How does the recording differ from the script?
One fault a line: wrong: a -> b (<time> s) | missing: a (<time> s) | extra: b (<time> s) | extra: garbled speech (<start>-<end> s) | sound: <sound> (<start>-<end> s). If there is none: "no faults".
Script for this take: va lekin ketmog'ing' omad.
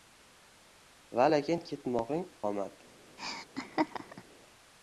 sound: laugh (3.2-4.2 s)